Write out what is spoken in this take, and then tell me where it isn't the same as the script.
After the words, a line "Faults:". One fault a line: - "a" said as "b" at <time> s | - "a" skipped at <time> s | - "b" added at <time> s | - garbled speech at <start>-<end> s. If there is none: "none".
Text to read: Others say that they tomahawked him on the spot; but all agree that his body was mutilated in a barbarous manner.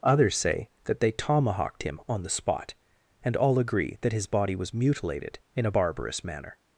Others say that they tomahawked him on the spot; and all agree that his body was mutilated in a barbarous manner.
Faults:
- "but" said as "and" at 3.2 s